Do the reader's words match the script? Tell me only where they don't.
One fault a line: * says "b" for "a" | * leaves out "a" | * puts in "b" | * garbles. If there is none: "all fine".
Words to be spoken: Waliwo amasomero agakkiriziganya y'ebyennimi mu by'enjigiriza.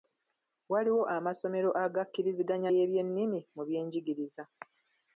all fine